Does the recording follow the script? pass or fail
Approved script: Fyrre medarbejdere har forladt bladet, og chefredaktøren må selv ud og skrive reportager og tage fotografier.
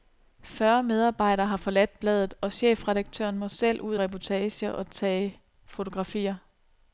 fail